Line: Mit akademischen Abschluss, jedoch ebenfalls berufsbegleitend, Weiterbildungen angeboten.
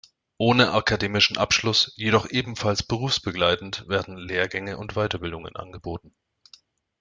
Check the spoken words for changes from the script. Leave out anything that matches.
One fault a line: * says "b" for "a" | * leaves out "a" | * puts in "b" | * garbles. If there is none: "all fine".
* says "Ohne" for "Mit"
* puts in "werden Lehrgänge und"